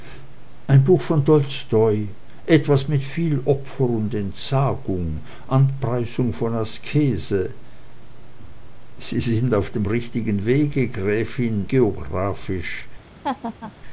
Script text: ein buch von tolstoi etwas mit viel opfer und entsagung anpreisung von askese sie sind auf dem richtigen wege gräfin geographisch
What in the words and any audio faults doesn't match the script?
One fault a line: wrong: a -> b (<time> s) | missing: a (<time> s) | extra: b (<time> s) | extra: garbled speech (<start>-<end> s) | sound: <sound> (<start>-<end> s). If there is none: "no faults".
sound: laugh (13.2-13.7 s)